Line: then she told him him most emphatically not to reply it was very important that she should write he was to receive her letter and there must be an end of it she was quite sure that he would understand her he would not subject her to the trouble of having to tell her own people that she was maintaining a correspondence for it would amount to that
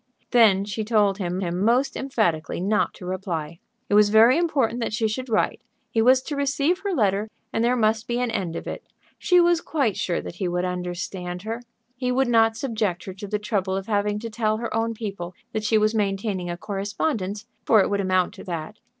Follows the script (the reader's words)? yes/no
yes